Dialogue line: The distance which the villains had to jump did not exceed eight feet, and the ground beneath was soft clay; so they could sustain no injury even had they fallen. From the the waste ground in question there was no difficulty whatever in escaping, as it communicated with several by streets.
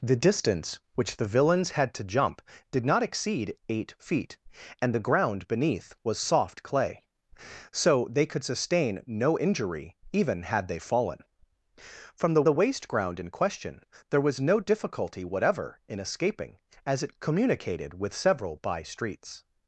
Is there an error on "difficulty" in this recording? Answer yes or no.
no